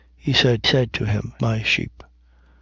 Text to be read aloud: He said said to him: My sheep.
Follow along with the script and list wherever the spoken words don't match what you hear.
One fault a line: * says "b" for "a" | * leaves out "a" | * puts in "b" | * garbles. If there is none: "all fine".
all fine